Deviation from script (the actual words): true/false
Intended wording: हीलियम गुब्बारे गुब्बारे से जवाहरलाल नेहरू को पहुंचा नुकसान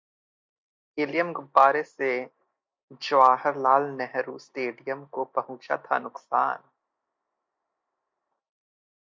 true